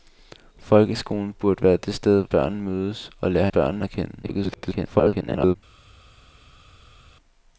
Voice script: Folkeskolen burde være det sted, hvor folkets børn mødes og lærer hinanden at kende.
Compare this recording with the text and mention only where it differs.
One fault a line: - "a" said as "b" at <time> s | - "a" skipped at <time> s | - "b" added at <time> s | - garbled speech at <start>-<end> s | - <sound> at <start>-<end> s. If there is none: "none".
- "hvor folkets" skipped at 2.2 s
- "hinanden" said as "børn" at 3.5 s
- garbled speech at 4.2-5.6 s